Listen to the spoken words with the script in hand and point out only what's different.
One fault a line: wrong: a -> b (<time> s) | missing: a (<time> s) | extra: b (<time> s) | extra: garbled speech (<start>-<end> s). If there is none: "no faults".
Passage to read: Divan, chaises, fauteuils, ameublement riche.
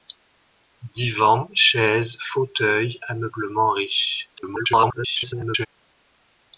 extra: garbled speech (4.4-5.7 s)